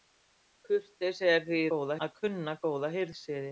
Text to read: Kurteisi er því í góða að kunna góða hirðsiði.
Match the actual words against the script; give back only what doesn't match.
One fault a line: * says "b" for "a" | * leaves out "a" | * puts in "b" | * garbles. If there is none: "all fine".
all fine